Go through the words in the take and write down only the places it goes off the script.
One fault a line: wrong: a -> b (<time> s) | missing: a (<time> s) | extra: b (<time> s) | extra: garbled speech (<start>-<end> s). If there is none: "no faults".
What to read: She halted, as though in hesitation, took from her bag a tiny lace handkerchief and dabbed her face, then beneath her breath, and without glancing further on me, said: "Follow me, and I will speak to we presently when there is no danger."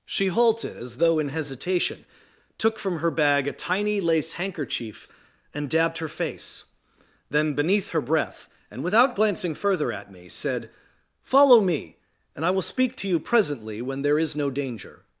wrong: on -> at (9.9 s)
wrong: we -> you (13.1 s)